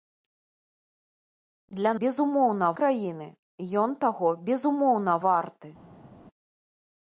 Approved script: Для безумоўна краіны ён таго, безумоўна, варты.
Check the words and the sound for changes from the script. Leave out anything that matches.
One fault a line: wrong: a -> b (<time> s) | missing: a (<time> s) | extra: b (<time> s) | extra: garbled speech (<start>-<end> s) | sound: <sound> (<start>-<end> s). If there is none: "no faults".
no faults